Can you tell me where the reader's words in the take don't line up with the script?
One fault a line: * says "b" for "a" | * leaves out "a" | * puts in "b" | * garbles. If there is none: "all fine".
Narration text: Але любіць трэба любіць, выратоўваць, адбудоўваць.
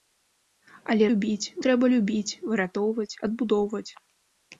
all fine